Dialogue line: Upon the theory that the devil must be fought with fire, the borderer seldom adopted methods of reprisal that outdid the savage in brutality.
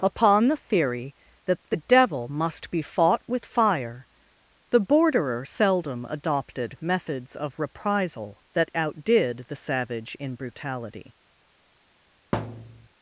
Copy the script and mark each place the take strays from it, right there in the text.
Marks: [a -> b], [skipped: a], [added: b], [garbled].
Upon the theory that the devil must be fought with fire, the borderer seldom adopted methods of reprisal that outdid the savage in brutality.